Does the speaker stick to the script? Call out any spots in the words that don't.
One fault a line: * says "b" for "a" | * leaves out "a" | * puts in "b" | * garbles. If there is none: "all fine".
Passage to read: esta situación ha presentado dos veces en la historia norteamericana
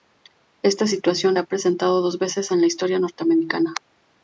all fine